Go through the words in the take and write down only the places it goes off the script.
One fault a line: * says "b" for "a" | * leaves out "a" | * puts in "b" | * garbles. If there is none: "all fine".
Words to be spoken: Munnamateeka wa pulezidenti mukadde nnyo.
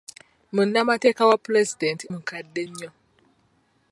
all fine